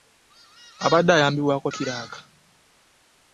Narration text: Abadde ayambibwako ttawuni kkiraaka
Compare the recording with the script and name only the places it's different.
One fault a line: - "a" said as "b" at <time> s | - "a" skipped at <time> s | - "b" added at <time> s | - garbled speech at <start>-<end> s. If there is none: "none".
- "ttawuni" skipped at 1.7 s